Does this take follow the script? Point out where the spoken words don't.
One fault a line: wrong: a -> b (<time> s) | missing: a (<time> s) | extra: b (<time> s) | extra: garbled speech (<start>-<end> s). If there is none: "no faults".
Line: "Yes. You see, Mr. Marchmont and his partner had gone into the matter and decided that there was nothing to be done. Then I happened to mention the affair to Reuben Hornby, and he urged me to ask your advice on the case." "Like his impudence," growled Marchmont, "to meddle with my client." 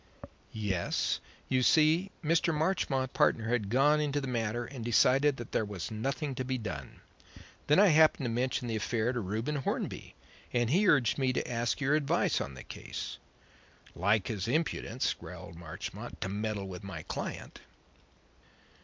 missing: and his (3.1 s)